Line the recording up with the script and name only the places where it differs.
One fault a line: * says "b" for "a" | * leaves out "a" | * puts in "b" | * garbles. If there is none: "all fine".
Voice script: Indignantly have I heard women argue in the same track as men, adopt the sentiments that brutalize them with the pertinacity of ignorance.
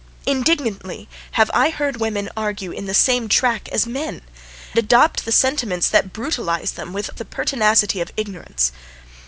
all fine